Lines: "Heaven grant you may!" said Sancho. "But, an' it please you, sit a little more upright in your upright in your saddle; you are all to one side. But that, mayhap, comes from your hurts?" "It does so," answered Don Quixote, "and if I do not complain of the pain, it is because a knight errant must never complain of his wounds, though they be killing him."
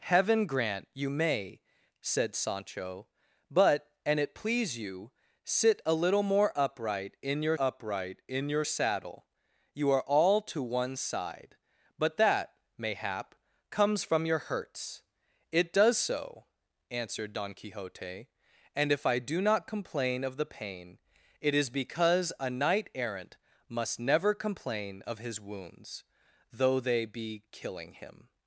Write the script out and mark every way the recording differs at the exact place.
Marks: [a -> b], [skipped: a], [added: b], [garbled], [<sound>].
"Heaven grant you may!" said Sancho. "But, an' it please you, sit a little more upright in your upright in your saddle; you are all to one side. But that, mayhap, comes from your hurts?" "It does so," answered Don Quixote, "and if I do not complain of the pain, it is because a knight errant must never complain of his wounds, though they be killing him."